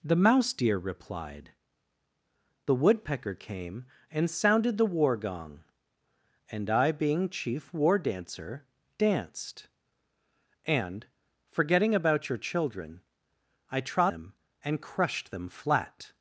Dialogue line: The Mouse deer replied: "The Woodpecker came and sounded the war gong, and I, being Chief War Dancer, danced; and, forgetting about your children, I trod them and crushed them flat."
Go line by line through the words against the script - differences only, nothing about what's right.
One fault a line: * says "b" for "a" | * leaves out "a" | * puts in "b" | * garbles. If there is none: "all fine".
all fine